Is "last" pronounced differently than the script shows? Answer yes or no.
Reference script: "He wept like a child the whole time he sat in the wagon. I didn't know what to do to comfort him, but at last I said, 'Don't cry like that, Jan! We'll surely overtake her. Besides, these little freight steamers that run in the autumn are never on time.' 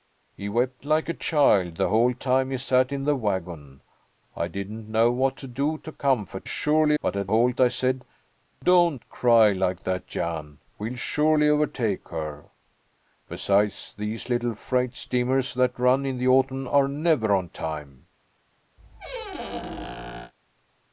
yes